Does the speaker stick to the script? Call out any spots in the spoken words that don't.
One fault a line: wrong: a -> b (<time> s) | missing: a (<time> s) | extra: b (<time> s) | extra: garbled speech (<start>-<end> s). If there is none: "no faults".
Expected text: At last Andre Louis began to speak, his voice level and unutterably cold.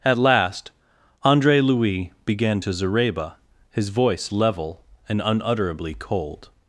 wrong: speak -> zareba (2.7 s)